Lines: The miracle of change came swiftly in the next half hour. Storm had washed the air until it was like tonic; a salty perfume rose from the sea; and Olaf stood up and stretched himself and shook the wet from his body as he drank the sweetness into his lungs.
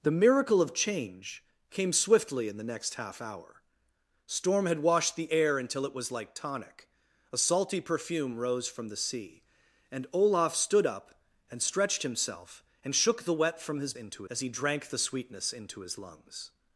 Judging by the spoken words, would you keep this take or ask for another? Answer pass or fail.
fail